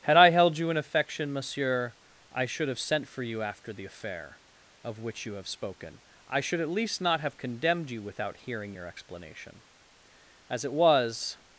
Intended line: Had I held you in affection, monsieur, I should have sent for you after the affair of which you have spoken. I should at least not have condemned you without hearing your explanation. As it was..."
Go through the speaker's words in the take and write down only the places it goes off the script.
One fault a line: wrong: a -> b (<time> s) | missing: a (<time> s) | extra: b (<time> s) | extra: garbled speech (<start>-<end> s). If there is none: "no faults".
no faults